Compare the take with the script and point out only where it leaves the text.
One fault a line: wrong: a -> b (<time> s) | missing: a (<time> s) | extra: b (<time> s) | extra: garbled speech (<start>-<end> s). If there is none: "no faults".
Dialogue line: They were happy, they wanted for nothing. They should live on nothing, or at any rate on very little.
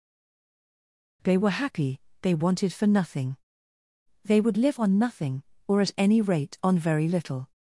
wrong: should -> would (4.4 s)